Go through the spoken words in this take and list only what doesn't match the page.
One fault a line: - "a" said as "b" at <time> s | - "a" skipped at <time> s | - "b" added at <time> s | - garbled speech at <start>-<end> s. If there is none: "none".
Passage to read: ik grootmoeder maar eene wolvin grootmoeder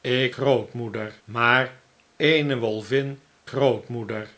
none